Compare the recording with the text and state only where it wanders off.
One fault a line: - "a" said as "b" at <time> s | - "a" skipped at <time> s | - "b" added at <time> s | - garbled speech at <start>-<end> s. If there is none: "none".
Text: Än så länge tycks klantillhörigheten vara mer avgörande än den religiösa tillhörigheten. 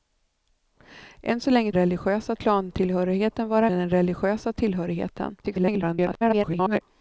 - "tycks" said as "religiösa" at 1.7 s
- "mer avgörande" skipped at 3.7 s
- garbled speech at 5.4-6.8 s